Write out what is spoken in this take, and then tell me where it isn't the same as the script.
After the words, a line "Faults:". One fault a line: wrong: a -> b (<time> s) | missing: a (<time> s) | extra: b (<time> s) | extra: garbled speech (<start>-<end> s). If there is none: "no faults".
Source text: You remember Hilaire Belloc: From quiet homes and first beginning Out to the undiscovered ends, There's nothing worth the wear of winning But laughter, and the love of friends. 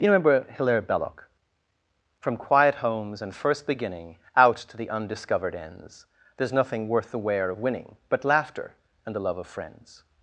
You remember Hilaire Belloc: From quiet homes and first beginning Out to the undiscovered ends, There's nothing worth the wear of winning But laughter, and the love of friends.
Faults:
no faults